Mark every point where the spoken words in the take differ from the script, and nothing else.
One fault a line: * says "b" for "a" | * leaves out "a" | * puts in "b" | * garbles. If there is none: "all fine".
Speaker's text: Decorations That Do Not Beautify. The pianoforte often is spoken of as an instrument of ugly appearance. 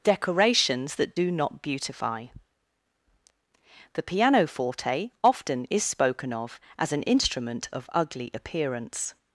all fine